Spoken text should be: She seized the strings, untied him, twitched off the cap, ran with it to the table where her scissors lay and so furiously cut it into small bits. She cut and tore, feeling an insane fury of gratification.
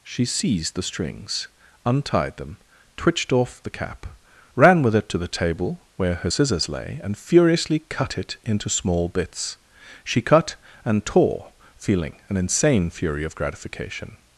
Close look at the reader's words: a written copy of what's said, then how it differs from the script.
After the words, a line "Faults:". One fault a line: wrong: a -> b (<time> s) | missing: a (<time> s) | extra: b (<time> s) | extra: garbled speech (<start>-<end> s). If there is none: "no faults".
She seized the strings, untied them, twitched off the cap, ran with it to the table where her scissors lay and furiously cut it into small bits. She cut and tore, feeling an insane fury of gratification.
Faults:
wrong: him -> them (2.4 s)
missing: so (7.2 s)